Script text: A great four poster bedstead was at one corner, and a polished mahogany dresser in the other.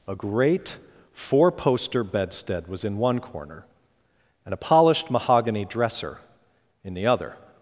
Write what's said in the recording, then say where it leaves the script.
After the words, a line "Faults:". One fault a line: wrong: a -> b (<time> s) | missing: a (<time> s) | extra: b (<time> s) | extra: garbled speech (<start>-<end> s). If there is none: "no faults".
A great four poster bedstead was in one corner, and a polished mahogany dresser in the other.
Faults:
wrong: at -> in (2.8 s)